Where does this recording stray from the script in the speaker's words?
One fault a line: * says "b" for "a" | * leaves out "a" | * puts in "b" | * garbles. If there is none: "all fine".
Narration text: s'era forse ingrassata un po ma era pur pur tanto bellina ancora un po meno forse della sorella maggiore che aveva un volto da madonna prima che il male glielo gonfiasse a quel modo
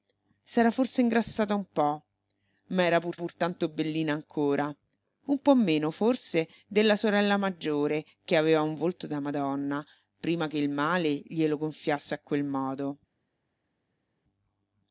all fine